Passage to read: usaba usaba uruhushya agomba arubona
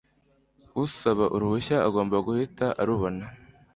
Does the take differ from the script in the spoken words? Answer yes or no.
yes